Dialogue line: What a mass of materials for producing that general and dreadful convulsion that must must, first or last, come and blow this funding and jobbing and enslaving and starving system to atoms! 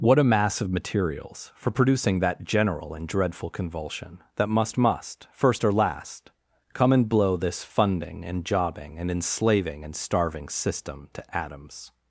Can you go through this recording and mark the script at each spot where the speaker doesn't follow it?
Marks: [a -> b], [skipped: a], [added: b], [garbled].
What a mass of materials for producing that general and dreadful convulsion that must must, first or last, come and blow this funding and jobbing and enslaving and starving system to atoms!